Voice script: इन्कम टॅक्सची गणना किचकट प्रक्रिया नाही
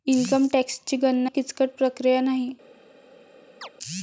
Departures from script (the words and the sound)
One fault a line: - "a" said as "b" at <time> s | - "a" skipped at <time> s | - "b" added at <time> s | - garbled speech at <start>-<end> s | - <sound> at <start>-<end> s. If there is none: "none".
- chirp at 3.6-3.7 s